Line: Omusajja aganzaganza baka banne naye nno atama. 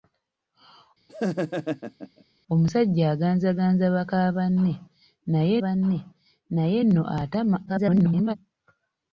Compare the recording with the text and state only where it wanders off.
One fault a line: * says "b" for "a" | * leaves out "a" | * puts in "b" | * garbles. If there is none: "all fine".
* puts in "banne naye"
* garbles